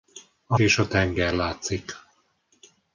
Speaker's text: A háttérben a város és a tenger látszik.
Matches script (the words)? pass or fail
fail